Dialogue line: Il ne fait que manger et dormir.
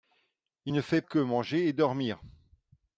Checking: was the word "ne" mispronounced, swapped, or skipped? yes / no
no